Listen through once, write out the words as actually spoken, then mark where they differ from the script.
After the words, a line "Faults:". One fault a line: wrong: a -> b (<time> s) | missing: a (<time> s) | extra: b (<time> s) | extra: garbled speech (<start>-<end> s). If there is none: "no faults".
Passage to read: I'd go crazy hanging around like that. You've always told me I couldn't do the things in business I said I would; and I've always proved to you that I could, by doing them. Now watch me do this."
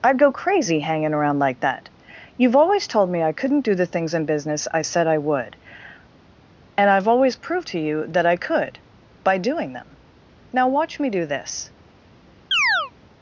I'd go crazy hanging around like that. You've always told me I couldn't do the things in business I said I would; and I've always proved to you that I could, by doing them. Now watch me do this."
Faults:
no faults